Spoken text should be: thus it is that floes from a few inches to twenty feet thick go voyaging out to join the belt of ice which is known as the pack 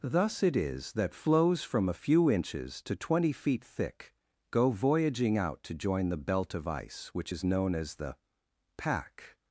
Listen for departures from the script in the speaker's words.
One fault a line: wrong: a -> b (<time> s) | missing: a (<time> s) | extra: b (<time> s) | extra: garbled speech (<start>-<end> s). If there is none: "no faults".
no faults